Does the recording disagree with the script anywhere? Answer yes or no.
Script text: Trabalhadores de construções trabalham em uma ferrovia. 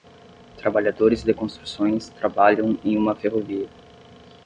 no